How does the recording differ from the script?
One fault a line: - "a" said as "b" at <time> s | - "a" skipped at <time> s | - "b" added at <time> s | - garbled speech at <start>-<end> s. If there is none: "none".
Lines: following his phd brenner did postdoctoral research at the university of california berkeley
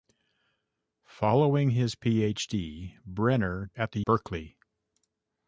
- "did postdoctoral research" skipped at 3.7 s
- "university of california" skipped at 4.0 s